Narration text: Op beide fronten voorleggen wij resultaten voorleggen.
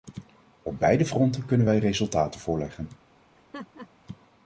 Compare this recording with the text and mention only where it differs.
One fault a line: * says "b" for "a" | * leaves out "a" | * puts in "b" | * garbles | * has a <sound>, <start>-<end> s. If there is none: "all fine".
* says "kunnen" for "voorleggen"
* has a laugh, 3.3-3.9 s